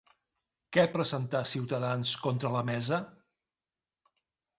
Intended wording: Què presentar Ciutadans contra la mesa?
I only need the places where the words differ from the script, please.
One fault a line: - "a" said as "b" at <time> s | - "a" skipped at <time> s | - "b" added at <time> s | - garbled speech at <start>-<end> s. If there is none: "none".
none